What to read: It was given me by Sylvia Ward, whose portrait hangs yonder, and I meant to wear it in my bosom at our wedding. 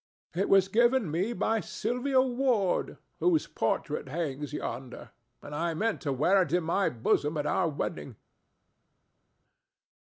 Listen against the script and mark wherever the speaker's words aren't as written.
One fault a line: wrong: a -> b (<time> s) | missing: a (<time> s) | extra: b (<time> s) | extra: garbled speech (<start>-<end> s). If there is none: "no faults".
no faults